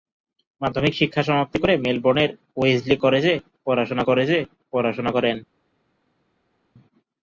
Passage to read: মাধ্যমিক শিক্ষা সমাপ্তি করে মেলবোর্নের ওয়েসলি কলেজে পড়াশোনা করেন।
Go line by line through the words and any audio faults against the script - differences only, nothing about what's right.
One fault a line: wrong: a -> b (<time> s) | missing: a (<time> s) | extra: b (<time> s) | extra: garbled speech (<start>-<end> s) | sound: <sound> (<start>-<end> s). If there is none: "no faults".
extra: কলেজে পড়াশোনা (4.1 s)